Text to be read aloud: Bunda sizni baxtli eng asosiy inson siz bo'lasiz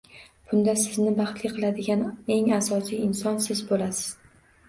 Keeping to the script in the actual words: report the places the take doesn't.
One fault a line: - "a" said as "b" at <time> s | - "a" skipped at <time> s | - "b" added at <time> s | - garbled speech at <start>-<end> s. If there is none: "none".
- "qiladigan" added at 1.5 s